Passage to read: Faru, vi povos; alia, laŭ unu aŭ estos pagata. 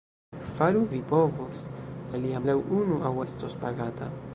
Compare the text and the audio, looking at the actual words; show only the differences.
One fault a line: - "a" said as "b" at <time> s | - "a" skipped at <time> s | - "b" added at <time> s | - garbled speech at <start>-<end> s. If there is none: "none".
none